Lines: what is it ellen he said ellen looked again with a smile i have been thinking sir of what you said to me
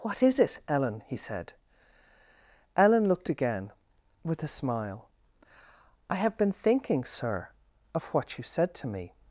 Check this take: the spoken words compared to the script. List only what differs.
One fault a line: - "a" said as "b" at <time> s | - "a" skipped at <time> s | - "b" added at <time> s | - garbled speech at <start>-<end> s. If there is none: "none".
none